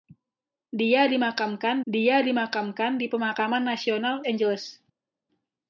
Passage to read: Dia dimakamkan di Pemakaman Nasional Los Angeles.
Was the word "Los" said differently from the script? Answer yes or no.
yes